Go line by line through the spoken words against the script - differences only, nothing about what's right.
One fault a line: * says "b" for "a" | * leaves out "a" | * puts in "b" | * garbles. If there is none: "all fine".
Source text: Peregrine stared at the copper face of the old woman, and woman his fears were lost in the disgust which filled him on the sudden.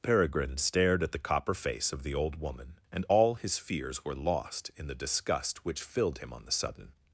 * says "all" for "woman"